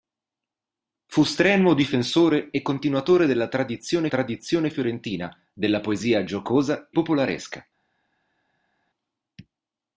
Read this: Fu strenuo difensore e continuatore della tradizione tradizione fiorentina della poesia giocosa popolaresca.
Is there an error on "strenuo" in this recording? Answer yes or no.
no